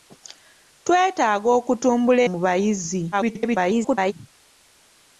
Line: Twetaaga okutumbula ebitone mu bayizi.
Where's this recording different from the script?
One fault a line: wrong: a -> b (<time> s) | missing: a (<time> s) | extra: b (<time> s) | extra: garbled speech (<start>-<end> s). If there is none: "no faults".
missing: ebitone (2.2 s)
extra: garbled speech (3.1-4.1 s)